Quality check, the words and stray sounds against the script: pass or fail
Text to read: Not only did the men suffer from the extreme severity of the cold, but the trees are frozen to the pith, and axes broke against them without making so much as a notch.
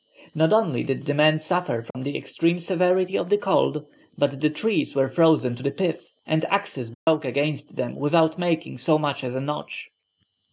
fail